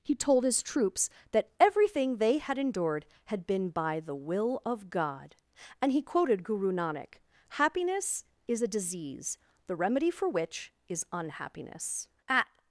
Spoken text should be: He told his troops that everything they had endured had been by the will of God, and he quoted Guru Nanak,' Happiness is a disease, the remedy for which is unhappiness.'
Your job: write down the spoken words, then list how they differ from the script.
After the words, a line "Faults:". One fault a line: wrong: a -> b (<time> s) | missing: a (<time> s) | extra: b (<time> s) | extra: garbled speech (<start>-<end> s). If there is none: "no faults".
He told his troops that everything they had endured had been by the will of God, and he quoted Guru Nanak,' Happiness is a disease, the remedy for which is unhappiness.' At
Faults:
extra: At (12.3 s)